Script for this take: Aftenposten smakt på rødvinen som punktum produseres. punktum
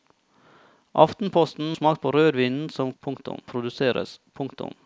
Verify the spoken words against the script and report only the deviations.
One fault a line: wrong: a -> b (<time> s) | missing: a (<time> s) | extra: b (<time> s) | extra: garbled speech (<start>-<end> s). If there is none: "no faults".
no faults